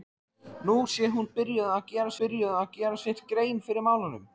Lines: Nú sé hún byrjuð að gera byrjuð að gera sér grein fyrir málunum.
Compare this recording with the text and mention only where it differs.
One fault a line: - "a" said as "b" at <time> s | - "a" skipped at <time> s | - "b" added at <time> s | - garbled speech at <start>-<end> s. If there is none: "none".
none